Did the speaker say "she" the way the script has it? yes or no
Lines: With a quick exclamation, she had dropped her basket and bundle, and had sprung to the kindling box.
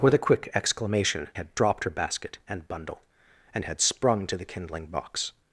no